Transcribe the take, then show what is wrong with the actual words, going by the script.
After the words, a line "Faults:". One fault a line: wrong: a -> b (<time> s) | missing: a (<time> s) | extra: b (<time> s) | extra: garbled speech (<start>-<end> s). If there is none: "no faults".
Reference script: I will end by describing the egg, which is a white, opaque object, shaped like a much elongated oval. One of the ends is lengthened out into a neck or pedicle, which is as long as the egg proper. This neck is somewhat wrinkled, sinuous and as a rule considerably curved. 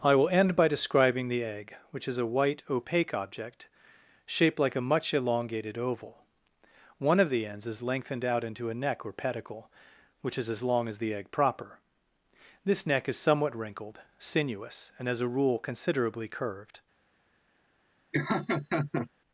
I will end by describing the egg, which is a white, opaque object, shaped like a much elongated oval. One of the ends is lengthened out into a neck or pedicle, which is as long as the egg proper. This neck is somewhat wrinkled, sinuous and as a rule considerably curved.
Faults:
no faults